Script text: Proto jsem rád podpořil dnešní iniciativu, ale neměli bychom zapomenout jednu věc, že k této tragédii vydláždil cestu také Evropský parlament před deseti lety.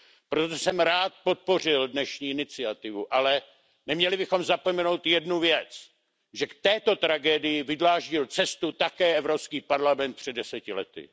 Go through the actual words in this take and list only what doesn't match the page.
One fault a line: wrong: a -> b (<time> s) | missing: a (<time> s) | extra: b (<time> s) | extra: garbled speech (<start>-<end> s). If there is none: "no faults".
no faults